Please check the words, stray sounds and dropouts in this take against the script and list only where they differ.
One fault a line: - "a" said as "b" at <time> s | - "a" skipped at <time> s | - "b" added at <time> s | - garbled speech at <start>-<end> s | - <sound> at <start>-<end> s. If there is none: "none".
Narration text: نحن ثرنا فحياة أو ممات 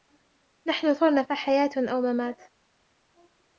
none